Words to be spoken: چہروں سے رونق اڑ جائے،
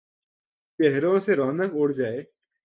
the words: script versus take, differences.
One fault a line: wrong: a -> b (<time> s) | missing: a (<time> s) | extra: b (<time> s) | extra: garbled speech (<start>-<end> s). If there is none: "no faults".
no faults